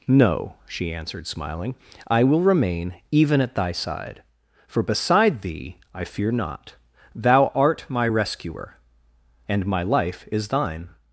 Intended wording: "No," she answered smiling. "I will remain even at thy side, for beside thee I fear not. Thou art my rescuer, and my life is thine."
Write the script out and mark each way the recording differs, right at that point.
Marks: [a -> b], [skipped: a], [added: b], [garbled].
"No," she answered smiling. "I will remain even at thy side, for beside thee I fear not. Thou art my rescuer, and my life is thine."